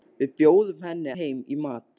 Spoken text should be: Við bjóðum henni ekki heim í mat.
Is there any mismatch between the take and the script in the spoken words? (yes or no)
yes